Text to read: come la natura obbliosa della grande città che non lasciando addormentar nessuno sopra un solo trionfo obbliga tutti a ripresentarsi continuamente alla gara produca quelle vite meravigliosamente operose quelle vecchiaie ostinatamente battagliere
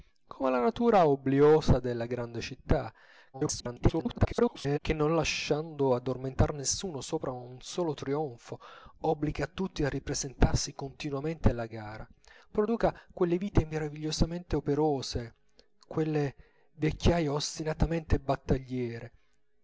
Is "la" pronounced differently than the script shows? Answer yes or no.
no